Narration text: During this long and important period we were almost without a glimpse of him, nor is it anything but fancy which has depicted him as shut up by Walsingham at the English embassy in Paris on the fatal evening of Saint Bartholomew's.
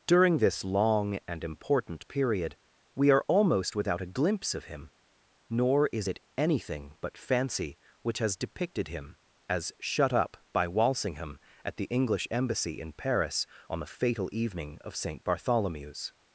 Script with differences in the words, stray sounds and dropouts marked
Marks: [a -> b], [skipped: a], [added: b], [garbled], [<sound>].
During this long and important period we [were -> are] almost without a glimpse of him, nor is it anything but fancy which has depicted him as shut up by Walsingham at the English embassy in Paris on the fatal evening of Saint Bartholomew's.